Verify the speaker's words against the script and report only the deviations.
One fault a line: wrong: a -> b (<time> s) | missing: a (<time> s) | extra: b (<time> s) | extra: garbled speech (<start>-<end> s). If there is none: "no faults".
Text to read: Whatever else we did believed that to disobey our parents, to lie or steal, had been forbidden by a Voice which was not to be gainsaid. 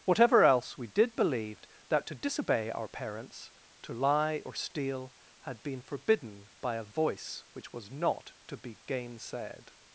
no faults